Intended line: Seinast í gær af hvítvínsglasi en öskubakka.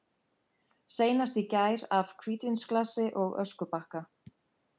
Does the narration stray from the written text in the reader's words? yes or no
yes